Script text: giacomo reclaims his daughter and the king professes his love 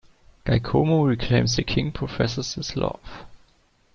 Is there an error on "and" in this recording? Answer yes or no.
yes